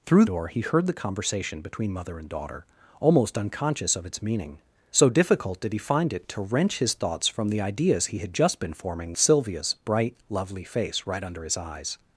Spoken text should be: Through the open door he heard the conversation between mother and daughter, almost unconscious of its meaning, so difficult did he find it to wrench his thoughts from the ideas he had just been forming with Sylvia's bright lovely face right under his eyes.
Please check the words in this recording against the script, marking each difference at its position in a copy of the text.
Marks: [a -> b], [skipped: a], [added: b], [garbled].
Through [skipped: the open] door he heard the conversation between mother and daughter, almost unconscious of its meaning, so difficult did he find it to wrench his thoughts from the ideas he had just been forming [skipped: with] Sylvia's bright lovely face right under his eyes.